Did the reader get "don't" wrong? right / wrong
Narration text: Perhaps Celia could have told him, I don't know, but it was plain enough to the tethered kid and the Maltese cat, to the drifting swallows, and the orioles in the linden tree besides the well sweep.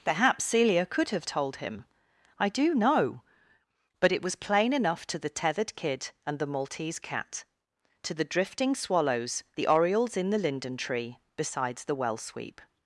wrong